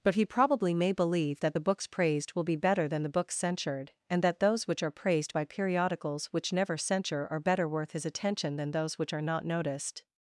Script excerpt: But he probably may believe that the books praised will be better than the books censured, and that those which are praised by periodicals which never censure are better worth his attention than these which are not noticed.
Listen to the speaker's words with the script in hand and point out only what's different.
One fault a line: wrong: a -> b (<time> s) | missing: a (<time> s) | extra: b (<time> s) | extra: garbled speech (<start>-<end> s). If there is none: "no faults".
wrong: these -> those (8.7 s)